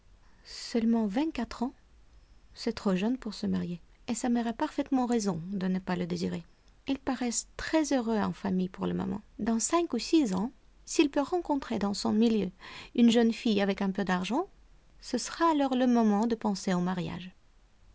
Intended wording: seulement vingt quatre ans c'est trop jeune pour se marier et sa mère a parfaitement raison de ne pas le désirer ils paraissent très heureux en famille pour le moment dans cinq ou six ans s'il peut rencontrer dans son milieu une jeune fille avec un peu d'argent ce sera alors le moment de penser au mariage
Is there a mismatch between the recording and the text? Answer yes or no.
no